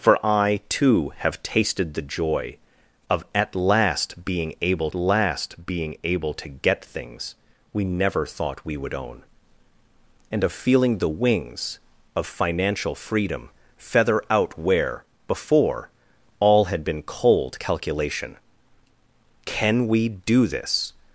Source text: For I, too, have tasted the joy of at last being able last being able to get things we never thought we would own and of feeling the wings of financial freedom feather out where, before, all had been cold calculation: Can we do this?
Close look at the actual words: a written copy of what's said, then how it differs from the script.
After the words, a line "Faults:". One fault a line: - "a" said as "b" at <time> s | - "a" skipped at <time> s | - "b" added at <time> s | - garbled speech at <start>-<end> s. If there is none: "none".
For I, too, have tasted the joy of at last being able last being able to get things we never thought we would own and of feeling the wings of financial freedom feather out where, before, all had been cold calculation: Can we do this?
Faults:
none